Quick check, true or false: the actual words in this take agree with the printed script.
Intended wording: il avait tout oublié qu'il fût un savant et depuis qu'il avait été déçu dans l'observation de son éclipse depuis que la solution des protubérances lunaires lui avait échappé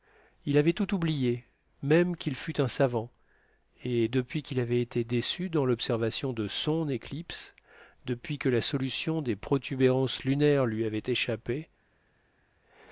false